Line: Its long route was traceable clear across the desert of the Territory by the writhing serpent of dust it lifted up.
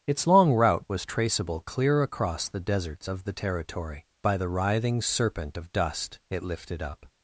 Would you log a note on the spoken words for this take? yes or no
yes